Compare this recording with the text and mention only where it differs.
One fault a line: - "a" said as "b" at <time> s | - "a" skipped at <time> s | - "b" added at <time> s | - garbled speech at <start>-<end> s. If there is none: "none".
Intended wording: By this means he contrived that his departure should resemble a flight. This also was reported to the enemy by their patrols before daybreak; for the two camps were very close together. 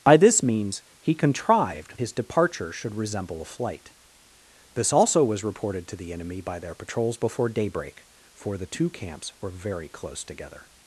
- "that" skipped at 2.0 s